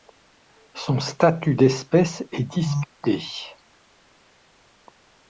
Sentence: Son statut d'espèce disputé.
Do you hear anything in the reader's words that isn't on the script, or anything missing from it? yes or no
yes